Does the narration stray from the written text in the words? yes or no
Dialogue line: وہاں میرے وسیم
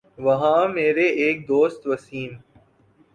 yes